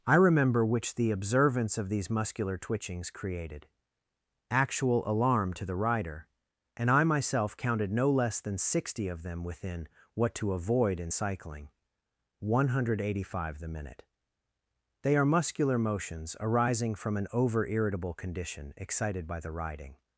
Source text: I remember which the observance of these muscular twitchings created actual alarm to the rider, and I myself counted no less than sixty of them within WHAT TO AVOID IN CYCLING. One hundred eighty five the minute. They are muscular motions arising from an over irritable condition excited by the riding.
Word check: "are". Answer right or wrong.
right